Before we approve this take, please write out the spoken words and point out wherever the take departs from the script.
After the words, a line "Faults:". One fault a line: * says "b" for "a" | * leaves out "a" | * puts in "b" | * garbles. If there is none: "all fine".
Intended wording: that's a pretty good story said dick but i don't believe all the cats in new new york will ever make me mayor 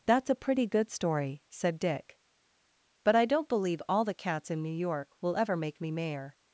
that's a pretty good story said dick but i don't believe all the cats in new york will ever make me mayor
Faults:
* leaves out "new"